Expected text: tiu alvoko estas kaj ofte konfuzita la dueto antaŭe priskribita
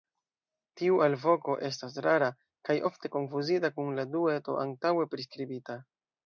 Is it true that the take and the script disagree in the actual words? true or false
true